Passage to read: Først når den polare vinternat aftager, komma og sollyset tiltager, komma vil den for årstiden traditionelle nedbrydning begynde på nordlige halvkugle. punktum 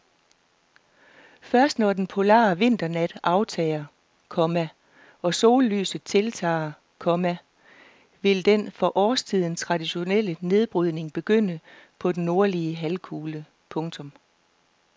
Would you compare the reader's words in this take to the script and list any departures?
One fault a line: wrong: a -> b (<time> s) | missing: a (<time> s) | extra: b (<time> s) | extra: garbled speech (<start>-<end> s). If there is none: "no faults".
extra: den (12.1 s)